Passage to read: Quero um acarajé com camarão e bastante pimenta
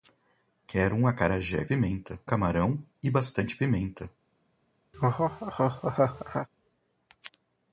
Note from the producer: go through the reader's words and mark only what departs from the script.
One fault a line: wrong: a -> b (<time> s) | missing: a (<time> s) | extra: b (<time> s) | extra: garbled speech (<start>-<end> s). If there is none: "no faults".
wrong: com -> pimenta (1.6 s)